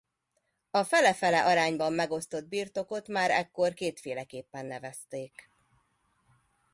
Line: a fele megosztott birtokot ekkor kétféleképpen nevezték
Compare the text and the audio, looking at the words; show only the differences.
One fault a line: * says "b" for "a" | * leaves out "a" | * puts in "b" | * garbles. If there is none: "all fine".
* puts in "fele arányban"
* puts in "már"